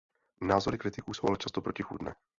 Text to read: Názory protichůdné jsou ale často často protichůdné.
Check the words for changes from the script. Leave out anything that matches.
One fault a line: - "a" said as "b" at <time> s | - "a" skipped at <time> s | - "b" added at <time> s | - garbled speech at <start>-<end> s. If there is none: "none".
- "protichůdné" said as "kritiků" at 0.8 s
- "často" skipped at 1.6 s